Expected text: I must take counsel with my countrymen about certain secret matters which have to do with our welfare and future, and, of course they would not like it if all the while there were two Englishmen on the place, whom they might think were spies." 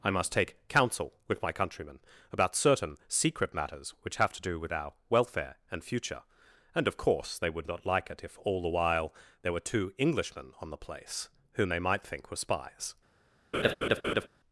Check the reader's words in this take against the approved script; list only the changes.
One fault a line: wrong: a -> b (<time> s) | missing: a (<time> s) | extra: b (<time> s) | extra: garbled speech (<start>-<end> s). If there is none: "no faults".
no faults